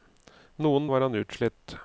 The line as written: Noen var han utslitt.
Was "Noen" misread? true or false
false